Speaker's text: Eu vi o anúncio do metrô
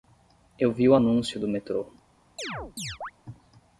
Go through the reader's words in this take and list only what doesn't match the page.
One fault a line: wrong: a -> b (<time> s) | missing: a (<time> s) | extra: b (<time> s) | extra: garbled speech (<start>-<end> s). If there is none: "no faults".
no faults